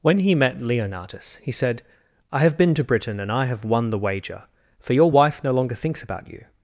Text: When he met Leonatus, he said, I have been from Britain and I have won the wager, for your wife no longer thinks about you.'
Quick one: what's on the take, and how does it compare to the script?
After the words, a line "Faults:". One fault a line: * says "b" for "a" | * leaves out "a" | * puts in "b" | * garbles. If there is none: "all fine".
When he met Leonatus, he said, I have been to Britain and I have won the wager, for your wife no longer thinks about you.'
Faults:
* says "to" for "from"